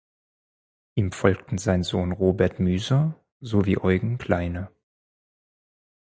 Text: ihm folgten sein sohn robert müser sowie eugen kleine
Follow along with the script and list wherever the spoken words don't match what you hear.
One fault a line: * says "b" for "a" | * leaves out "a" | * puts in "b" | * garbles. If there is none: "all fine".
all fine